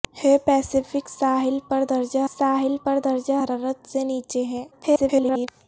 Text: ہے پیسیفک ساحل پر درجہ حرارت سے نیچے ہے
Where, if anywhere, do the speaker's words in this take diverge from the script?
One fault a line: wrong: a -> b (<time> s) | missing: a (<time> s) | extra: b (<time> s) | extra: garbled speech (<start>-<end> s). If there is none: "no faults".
extra: ساحل پر درجہ (2.3 s)
extra: garbled speech (4.7-5.5 s)